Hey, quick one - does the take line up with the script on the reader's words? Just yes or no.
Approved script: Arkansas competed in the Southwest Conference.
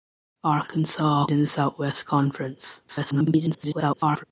no